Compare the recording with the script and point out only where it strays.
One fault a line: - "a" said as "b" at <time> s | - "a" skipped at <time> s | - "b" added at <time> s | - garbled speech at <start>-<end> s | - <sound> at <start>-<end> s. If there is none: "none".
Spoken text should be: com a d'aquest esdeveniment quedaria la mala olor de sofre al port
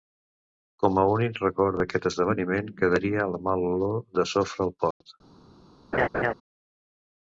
- "únic record" added at 1.1 s
- dropout at 4.9-5.0 s
- laugh at 5.9-6.3 s